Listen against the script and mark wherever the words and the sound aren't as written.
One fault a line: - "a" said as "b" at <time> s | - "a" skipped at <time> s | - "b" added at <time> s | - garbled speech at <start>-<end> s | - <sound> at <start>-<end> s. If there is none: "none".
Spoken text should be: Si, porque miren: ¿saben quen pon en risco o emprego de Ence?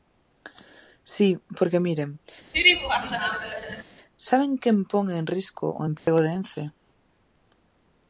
- laugh at 2.5-3.8 s
- dropout at 6.0-6.1 s